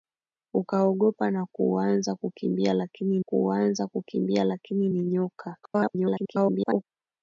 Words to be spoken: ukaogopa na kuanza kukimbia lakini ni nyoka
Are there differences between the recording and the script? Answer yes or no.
yes